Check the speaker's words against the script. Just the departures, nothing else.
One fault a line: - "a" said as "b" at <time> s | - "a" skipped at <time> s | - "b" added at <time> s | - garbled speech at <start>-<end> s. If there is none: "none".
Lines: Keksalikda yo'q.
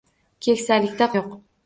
none